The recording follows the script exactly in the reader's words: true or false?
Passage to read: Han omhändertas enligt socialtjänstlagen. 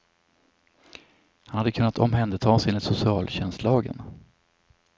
false